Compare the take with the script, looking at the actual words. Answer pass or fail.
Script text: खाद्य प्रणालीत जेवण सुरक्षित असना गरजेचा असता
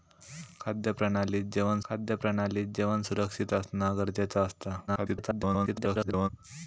fail